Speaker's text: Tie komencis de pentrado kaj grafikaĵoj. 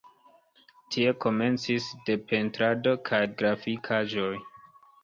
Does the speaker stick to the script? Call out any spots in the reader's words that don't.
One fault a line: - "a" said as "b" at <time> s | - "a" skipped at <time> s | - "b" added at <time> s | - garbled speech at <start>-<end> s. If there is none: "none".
none